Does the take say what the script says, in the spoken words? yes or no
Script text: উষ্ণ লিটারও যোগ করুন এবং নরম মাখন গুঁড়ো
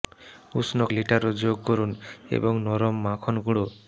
yes